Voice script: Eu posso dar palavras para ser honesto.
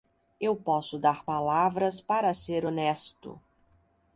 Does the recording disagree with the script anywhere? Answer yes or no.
no